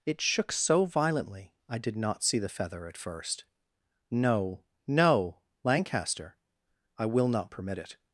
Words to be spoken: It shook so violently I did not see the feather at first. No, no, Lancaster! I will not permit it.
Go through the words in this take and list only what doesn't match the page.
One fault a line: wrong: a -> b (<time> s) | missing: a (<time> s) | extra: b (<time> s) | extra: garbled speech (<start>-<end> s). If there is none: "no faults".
no faults